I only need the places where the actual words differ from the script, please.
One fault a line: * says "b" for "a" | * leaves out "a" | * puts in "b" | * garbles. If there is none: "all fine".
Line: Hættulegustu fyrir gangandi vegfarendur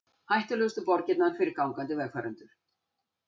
* puts in "borgirnar"